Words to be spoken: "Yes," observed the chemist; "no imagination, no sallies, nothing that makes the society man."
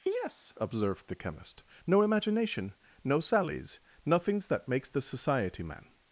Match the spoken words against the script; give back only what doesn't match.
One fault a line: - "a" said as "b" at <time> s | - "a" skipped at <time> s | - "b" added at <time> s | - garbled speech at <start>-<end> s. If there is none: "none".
- "nothing" said as "nothings" at 4.1 s